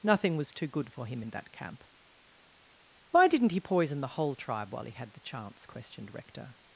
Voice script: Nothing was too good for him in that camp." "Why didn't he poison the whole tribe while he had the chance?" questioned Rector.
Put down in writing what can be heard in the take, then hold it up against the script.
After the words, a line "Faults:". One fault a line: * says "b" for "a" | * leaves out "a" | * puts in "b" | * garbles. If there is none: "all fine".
Nothing was too good for him in that camp." "Why didn't he poison the whole tribe while he had the chance?" questioned Rector.
Faults:
all fine